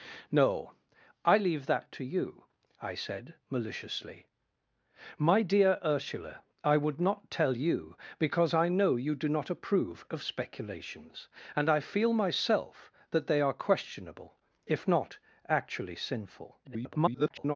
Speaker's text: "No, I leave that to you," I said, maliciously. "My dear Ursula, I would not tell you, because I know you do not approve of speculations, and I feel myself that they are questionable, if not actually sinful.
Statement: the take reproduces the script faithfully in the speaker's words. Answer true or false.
false